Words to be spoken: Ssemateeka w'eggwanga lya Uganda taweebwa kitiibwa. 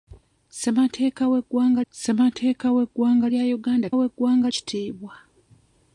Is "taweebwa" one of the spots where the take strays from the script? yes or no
yes